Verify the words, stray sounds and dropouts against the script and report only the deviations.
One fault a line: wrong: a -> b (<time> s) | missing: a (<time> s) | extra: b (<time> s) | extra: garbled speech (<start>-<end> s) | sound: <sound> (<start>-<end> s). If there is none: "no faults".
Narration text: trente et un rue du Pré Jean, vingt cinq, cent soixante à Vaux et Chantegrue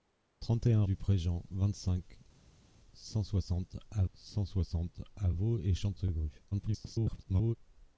missing: rue (0.8 s)
extra: cent soixante à (4.1 s)
extra: garbled speech (6.5-7.6 s)